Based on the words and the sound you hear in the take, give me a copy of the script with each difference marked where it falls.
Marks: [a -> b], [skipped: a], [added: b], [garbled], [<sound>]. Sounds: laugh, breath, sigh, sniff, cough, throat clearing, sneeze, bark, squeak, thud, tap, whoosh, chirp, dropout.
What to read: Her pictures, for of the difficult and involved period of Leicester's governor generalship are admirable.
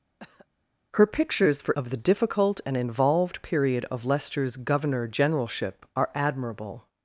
[cough] Her pictures, for of the difficult and involved period of Leicester's governor generalship are admirable.